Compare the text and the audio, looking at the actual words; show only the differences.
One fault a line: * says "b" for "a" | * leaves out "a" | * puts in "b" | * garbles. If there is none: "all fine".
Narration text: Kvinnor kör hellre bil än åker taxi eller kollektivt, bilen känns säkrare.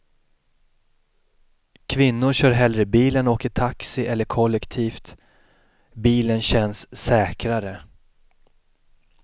all fine